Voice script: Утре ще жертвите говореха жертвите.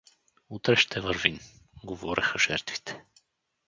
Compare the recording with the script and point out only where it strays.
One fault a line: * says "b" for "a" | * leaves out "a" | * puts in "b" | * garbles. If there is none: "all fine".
* says "вървим" for "жертвите"